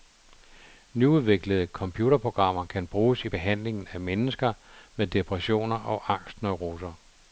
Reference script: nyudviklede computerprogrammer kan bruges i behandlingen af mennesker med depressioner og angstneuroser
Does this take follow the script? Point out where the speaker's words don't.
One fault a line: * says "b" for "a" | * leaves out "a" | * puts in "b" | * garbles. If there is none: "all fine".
all fine